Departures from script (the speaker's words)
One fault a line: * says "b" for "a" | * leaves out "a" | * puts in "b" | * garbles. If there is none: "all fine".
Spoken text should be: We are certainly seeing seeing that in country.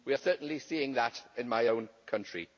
* leaves out "seeing"
* puts in "my own"